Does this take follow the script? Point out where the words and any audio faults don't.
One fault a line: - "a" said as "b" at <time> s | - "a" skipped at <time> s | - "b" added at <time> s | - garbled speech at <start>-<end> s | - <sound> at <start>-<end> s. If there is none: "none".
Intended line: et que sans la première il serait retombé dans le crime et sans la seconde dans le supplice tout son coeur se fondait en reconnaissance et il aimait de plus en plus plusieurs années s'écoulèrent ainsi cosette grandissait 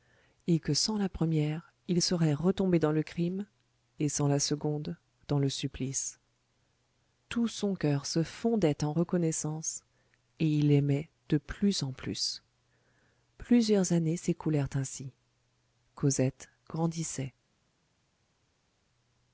none